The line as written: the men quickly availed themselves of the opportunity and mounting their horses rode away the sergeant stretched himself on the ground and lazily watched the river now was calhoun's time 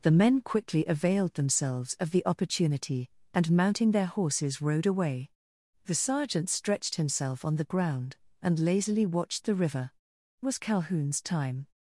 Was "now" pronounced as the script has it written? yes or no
no